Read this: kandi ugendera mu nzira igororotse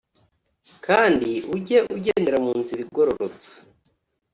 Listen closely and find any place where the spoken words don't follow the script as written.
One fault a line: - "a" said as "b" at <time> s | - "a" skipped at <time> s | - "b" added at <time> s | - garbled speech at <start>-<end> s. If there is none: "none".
- "ujye" added at 1.6 s